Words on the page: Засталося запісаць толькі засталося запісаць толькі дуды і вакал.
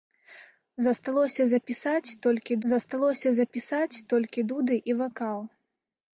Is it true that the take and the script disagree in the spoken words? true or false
false